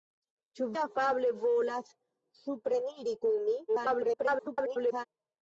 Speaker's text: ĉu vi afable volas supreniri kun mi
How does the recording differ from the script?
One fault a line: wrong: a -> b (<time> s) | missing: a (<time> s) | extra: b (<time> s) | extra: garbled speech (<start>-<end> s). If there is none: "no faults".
missing: vi (0.7 s)
extra: garbled speech (3.7-5.1 s)